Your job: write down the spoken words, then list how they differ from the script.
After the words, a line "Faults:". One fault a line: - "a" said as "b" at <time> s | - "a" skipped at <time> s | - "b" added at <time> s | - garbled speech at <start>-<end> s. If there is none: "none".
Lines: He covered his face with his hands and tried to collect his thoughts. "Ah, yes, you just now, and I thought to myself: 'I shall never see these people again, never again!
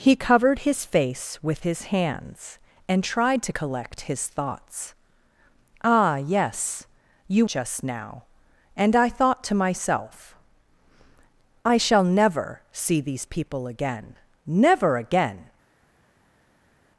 He covered his face with his hands and tried to collect his thoughts. "Ah, yes, you just now, and I thought to myself: 'I shall never see these people again, never again!
Faults:
none